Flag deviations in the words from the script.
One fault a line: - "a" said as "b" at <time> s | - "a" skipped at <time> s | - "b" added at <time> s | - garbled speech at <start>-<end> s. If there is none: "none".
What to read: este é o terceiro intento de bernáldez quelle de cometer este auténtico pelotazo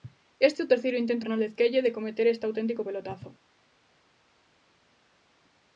- "de" skipped at 1.2 s